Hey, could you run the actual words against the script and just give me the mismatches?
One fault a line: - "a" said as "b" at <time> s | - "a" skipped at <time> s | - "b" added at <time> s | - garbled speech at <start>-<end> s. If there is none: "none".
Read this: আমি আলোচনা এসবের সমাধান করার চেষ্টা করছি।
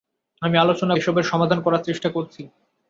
none